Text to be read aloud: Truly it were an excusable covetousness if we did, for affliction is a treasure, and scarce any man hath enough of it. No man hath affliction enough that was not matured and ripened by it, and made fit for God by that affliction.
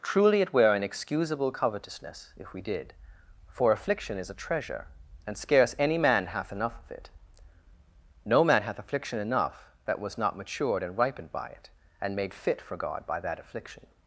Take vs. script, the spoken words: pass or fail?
pass